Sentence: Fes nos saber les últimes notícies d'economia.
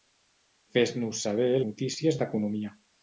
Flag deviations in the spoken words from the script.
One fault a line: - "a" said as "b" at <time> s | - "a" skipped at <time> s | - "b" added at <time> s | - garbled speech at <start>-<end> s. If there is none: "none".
- "les últimes" skipped at 1.5 s